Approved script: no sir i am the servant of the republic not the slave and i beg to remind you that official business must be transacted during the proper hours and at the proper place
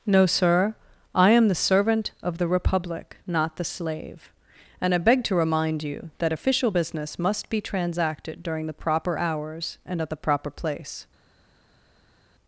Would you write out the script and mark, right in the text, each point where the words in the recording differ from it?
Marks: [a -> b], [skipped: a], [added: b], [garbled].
no sir i am the servant of the republic not the slave and i beg to remind you that official business must be transacted during the proper hours and at the proper place